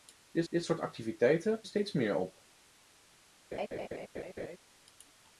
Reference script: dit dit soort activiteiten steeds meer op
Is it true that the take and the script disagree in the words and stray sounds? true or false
true